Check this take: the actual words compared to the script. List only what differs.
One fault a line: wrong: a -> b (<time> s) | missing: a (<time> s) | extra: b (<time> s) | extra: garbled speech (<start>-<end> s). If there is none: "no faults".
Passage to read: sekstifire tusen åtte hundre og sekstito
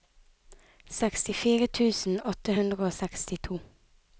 no faults